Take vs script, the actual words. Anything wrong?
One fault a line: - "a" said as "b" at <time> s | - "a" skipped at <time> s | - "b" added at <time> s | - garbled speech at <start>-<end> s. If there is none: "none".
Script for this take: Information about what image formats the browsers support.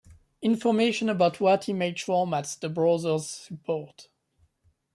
none